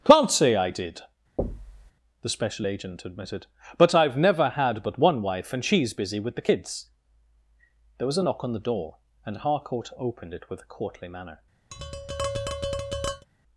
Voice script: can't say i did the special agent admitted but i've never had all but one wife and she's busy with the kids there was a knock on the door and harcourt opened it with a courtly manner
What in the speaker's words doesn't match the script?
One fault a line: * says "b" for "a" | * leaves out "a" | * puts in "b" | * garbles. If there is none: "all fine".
* leaves out "all"